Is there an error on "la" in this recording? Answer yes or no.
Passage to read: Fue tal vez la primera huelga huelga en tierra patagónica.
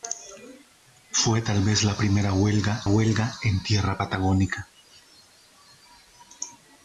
no